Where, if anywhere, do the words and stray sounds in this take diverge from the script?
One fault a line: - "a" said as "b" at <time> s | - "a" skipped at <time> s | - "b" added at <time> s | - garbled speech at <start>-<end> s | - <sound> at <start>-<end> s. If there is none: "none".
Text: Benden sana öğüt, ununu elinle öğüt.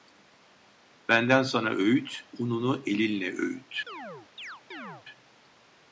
- chirp at 3.9-5.1 s